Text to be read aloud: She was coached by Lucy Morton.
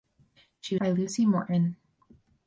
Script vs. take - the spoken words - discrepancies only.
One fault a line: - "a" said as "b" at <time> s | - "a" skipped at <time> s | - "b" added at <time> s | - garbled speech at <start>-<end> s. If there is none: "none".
- "was coached" skipped at 0.8 s